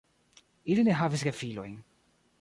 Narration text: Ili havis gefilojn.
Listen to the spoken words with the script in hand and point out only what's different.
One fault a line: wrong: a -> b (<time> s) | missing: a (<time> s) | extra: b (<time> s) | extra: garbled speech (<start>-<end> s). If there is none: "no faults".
extra: ne (0.8 s)